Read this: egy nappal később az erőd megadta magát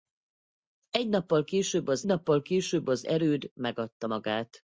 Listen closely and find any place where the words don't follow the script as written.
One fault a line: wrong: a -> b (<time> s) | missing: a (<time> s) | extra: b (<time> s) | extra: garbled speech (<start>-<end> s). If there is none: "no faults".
extra: nappal később az (2.1 s)